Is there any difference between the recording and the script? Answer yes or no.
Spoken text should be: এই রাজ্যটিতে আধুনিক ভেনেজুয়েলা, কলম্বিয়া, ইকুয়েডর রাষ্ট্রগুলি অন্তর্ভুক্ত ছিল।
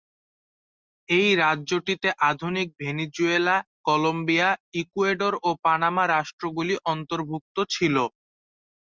yes